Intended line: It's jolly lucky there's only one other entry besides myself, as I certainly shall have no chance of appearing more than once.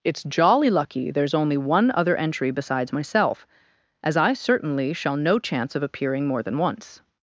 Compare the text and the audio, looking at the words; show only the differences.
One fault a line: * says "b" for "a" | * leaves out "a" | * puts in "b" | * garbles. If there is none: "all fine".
* leaves out "have"